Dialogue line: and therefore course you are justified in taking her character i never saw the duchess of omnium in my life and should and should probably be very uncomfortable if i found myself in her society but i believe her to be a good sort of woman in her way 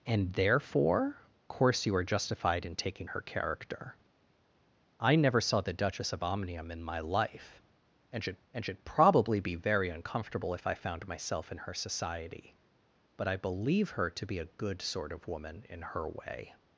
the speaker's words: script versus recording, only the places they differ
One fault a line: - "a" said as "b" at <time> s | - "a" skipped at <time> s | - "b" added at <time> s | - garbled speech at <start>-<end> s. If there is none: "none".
none